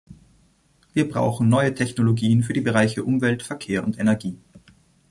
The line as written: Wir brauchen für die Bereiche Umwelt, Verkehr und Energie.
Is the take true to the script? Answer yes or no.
no